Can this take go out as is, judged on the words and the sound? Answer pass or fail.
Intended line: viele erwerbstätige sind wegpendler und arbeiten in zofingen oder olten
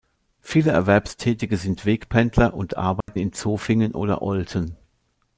fail